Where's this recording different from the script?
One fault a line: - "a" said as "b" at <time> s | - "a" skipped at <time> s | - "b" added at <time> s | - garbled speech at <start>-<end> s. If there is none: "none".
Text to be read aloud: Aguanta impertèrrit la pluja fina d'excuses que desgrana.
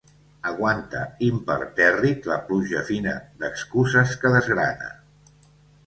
none